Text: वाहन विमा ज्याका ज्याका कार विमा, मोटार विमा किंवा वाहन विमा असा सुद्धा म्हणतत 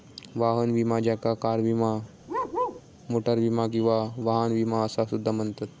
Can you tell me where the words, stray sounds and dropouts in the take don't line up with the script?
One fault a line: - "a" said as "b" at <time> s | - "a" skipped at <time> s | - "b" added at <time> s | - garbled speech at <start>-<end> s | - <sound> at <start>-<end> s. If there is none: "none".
- "ज्याका" skipped at 1.3 s
- bark at 2.3-2.8 s